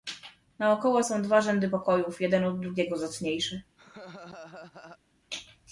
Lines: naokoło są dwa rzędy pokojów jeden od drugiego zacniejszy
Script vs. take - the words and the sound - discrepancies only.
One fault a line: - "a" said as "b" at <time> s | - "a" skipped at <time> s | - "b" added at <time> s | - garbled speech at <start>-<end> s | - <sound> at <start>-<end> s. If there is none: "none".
- laugh at 3.8-5.0 s